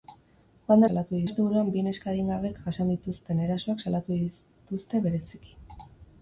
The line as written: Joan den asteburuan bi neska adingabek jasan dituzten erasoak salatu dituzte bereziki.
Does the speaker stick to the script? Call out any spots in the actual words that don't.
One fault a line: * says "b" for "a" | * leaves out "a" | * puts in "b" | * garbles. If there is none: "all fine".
* says "salatu" for "den"